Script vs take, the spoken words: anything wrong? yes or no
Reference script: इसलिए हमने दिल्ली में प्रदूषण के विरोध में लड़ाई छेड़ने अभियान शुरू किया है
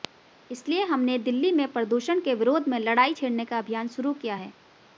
yes